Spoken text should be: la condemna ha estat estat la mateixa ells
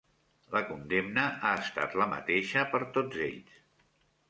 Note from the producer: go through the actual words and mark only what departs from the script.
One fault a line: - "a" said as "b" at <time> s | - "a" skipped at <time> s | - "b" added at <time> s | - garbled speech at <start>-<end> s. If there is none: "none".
- "estat" skipped at 1.9 s
- "per tots" added at 2.8 s